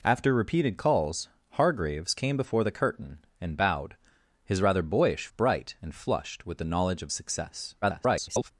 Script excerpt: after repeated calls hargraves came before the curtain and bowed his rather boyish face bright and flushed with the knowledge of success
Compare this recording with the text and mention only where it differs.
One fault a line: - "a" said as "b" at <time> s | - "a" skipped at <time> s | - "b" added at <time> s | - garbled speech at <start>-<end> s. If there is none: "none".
- "face" skipped at 5.3 s
- garbled speech at 7.8-8.5 s